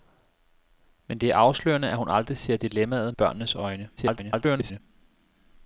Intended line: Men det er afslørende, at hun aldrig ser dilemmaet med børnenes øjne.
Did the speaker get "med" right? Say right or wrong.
wrong